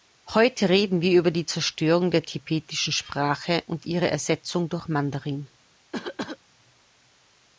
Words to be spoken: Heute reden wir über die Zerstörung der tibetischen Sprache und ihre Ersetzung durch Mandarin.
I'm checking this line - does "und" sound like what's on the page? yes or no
yes